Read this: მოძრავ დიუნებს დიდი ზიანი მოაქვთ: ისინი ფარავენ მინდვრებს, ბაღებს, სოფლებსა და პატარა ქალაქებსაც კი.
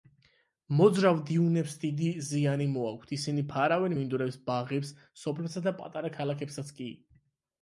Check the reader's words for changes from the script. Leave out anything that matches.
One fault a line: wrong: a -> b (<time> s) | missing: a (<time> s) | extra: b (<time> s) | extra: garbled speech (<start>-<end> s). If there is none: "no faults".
no faults